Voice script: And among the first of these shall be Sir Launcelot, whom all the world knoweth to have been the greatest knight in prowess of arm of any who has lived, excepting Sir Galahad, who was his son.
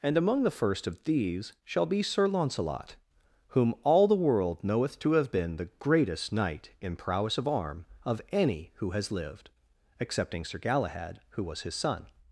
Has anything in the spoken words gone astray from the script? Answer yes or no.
no